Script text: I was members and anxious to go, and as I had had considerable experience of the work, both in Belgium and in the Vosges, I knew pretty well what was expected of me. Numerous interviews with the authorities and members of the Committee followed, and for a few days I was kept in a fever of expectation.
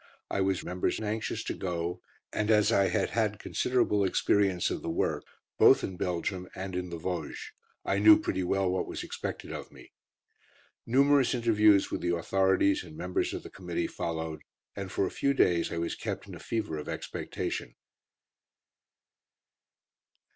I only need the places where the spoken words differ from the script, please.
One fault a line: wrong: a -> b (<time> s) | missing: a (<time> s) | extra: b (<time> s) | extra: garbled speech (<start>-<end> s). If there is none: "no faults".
no faults